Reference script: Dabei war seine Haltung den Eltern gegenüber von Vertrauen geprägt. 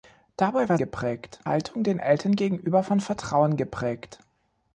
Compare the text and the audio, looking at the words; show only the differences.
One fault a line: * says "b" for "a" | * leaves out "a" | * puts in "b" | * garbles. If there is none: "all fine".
* says "geprägt" for "seine"